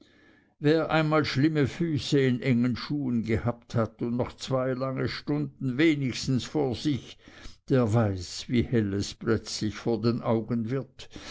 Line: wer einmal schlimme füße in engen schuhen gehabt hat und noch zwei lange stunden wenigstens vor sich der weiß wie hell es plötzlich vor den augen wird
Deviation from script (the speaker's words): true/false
false